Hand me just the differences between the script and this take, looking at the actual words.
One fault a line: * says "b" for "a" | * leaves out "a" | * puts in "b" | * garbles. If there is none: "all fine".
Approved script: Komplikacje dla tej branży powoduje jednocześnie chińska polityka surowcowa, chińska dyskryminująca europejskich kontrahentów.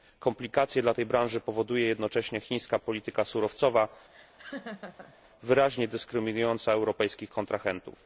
* says "wyraźnie" for "chińska"